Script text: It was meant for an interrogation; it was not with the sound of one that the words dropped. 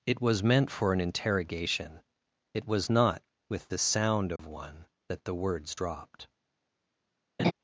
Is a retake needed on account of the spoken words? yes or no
no